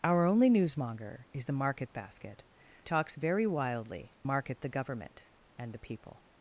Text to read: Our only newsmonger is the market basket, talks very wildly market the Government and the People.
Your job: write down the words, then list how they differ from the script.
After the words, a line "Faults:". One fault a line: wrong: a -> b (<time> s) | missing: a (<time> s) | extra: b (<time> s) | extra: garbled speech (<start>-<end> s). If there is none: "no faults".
Our only newsmonger is the market basket, talks very wildly market the Government and the People.
Faults:
no faults